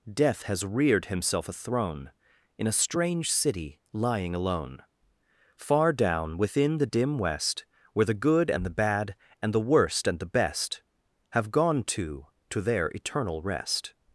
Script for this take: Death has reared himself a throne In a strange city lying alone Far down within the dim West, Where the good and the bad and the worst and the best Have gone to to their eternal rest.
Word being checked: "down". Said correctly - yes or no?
yes